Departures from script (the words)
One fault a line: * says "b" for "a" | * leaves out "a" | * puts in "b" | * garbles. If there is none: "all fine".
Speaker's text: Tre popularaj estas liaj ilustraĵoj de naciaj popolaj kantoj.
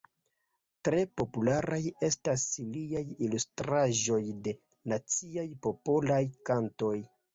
all fine